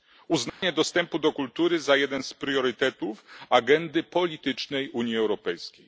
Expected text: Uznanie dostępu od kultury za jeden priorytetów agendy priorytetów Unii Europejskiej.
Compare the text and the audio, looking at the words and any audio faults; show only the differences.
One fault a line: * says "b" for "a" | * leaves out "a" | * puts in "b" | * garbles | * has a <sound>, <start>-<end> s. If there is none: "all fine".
* has a dropout, 0.5-0.6 s
* says "do" for "od"
* puts in "z"
* says "politycznej" for "priorytetów"